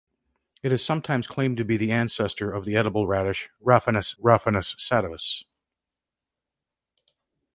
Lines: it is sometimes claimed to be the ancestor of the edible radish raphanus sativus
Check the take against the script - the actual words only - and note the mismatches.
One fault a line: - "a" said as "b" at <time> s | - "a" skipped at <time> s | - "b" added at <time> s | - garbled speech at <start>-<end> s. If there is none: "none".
- "raphanus" added at 4.2 s